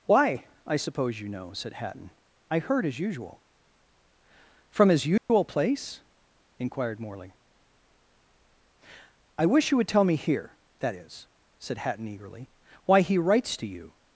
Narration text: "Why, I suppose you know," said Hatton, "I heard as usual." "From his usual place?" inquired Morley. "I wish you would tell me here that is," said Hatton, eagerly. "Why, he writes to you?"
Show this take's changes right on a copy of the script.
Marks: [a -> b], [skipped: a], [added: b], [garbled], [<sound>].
"Why, I suppose you know," said Hatton, "I heard as usual." "From his usual [dropout] place?" inquired Morley. "I wish you would tell me here that is," said Hatton, eagerly. "Why, he writes to you?"